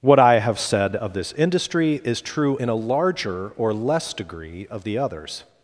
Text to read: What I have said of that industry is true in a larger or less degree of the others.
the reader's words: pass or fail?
fail